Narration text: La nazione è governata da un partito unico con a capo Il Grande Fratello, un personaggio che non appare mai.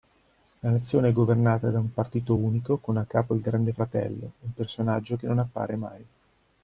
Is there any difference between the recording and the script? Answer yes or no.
no